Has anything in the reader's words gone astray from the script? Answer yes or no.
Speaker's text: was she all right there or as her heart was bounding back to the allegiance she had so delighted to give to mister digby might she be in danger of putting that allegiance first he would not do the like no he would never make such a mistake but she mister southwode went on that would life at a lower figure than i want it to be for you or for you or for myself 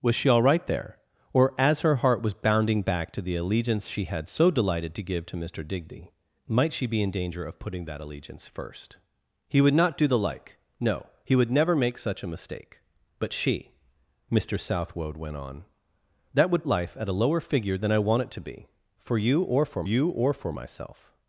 no